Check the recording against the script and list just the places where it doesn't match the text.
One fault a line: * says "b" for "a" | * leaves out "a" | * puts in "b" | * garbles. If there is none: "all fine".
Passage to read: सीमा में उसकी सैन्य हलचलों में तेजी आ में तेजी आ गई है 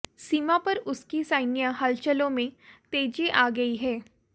* says "पर" for "में"
* leaves out "में तेजी आ"